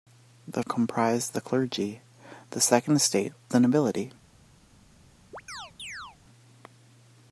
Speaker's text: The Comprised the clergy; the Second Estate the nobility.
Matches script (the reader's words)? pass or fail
pass